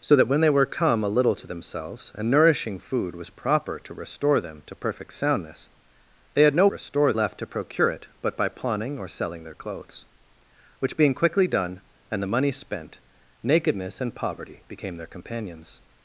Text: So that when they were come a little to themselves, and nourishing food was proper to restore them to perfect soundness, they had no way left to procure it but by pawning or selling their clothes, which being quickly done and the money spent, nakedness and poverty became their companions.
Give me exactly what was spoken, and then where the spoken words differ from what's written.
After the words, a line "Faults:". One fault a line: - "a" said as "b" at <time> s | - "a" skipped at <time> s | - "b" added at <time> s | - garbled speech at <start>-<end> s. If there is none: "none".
So that when they were come a little to themselves, and nourishing food was proper to restore them to perfect soundness, they had no restore left to procure it but by pawning or selling their clothes, which being quickly done and the money spent, nakedness and poverty became their companions.
Faults:
- "way" said as "restore" at 6.7 s